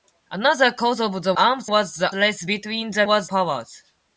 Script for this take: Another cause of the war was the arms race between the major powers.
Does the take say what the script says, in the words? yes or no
no